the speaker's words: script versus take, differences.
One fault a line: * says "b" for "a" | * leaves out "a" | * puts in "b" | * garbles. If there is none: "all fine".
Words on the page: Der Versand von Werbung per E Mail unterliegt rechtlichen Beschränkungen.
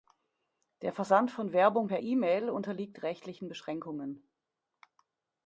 all fine